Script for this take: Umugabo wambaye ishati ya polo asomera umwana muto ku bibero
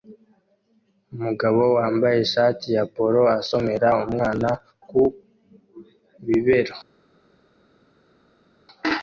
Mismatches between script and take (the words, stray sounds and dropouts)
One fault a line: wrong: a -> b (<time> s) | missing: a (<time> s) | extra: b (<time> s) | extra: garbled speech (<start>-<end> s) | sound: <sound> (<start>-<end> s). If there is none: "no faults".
missing: muto (4.5 s)